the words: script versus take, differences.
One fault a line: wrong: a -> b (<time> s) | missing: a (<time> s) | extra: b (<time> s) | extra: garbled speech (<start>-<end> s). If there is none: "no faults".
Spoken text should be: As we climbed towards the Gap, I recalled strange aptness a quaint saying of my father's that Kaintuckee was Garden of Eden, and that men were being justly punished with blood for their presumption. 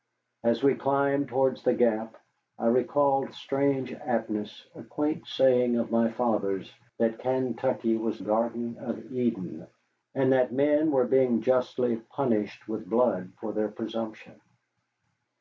no faults